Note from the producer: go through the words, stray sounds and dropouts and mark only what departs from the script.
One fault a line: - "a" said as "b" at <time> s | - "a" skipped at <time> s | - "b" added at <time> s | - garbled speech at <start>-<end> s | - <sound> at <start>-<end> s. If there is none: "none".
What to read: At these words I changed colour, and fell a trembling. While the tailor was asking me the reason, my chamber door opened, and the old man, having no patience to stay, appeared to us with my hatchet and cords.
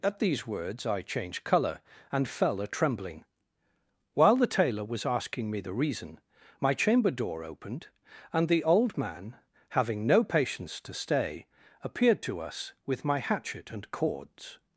none